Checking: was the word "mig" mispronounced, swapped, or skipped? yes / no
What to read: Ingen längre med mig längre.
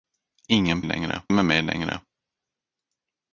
no